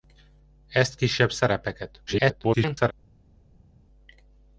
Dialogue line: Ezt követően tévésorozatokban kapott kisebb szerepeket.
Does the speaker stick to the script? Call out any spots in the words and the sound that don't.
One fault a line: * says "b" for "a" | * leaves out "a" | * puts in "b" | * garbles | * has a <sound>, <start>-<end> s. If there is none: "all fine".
* leaves out "követően tévésorozatokban kapott"
* garbles